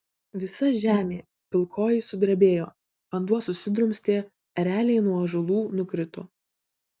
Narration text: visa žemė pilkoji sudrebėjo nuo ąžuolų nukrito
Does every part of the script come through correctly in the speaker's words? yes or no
no